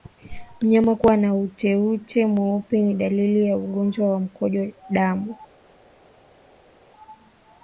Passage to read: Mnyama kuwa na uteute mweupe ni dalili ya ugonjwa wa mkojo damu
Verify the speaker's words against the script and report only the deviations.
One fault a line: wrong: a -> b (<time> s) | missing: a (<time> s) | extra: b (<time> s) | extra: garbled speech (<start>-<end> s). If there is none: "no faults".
no faults